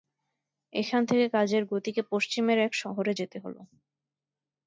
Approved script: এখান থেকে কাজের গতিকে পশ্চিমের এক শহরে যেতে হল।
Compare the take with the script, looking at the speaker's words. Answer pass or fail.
pass